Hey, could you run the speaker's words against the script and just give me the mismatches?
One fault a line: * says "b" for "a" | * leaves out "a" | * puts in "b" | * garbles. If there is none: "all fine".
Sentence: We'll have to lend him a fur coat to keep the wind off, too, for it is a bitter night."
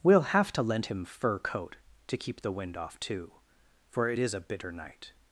* leaves out "a"